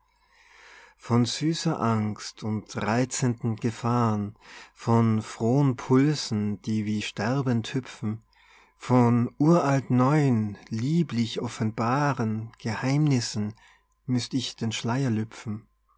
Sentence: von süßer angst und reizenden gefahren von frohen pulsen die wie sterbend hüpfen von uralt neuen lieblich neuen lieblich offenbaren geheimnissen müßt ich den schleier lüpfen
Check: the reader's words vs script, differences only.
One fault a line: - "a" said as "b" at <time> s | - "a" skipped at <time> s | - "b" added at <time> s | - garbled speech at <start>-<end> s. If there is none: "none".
- "neuen lieblich" skipped at 11.4 s